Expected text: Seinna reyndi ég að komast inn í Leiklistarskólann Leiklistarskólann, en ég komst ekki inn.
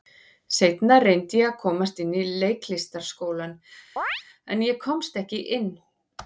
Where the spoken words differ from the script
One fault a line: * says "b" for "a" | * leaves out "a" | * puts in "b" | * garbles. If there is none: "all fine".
* leaves out "Leiklistarskólann"